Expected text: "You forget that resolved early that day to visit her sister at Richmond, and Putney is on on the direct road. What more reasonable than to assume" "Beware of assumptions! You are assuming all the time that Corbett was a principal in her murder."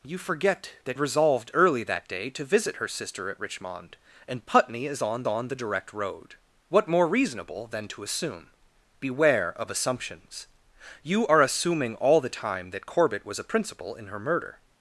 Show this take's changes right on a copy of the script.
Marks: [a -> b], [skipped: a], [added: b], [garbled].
"You forget that resolved early that day to visit her sister at Richmond, and Putney is on on the direct road. What more reasonable than to assume" "Beware of assumptions! You are assuming all the time that Corbett was a principal in her murder."